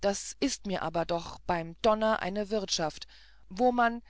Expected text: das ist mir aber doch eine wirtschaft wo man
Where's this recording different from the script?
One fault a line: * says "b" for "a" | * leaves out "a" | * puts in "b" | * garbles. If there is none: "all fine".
* puts in "beim donner"